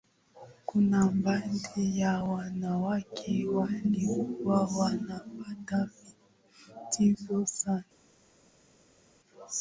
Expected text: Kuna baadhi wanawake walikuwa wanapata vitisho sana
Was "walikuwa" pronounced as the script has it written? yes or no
yes